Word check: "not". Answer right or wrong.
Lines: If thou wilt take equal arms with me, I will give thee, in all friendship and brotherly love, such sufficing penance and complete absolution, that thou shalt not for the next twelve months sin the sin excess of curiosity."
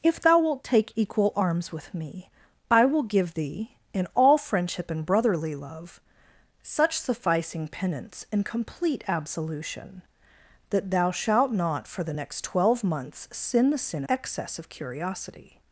right